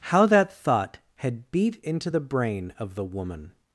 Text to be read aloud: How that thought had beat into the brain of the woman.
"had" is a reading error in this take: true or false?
false